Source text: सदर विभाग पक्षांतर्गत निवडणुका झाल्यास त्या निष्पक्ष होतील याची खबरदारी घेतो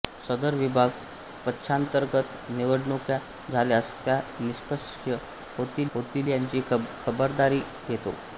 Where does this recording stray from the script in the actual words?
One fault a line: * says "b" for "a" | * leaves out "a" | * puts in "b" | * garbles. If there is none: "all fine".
* puts in "होतील"